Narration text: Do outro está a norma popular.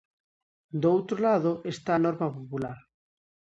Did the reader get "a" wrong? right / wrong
right